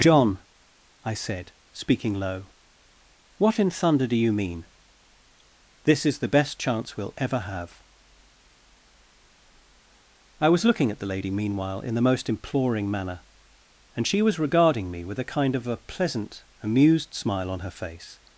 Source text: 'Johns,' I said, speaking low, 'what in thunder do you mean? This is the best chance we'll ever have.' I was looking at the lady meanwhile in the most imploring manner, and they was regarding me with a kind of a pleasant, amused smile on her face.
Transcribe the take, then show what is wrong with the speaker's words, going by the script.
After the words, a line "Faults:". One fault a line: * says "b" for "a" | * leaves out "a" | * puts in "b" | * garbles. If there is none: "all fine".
'John,' I said, speaking low, 'what in thunder do you mean? This is the best chance we'll ever have.' I was looking at the lady meanwhile in the most imploring manner, and she was regarding me with a kind of a pleasant, amused smile on her face.
Faults:
* says "John" for "Johns"
* says "she" for "they"